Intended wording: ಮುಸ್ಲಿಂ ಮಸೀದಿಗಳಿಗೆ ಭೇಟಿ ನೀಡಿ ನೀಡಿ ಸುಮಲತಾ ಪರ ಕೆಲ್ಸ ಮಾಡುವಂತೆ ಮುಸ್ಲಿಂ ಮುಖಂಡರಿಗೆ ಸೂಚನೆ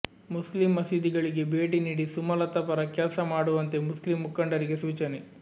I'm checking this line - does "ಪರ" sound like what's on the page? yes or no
yes